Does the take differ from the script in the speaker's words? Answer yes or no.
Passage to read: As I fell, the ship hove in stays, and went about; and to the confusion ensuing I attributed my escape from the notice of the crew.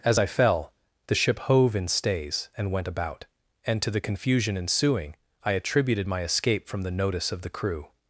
no